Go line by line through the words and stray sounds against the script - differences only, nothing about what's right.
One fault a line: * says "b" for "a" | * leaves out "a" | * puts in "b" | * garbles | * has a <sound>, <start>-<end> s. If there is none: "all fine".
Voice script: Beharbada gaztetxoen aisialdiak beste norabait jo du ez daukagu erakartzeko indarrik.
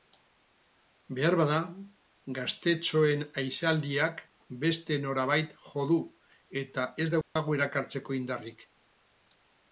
* puts in "eta"
* has a dropout, 7.2-7.4 s